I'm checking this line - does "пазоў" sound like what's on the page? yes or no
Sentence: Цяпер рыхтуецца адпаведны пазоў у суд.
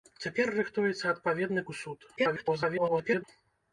no